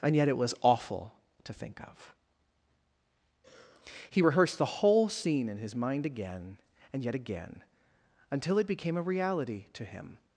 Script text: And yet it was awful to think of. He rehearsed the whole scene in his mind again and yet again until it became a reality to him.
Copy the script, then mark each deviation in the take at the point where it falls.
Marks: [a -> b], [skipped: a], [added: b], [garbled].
And yet it was awful to think of. He rehearsed the whole scene in his mind again and yet again until it became a reality to him.